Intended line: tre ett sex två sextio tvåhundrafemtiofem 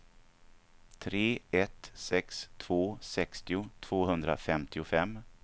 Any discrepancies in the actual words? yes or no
no